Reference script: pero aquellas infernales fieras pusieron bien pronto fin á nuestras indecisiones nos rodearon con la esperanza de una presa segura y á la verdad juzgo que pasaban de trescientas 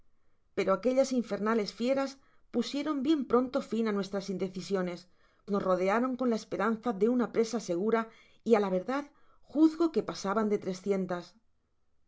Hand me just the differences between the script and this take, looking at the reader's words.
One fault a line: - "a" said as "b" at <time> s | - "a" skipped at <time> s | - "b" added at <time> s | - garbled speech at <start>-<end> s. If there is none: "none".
none